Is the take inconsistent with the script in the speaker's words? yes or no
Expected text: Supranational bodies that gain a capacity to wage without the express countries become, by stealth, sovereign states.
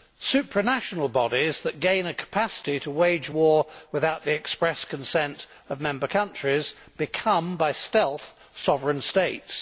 yes